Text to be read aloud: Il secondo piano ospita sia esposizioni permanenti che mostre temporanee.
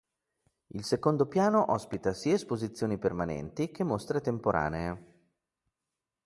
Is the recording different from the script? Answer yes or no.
no